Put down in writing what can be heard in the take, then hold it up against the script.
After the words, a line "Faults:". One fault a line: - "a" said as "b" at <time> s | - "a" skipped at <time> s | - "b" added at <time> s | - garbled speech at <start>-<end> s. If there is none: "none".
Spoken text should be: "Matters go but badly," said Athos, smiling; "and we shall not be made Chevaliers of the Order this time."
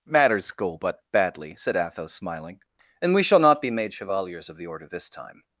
"Matters go but badly," said Athos, smiling; "and we shall not be made Chevaliers of the Order this time."
Faults:
none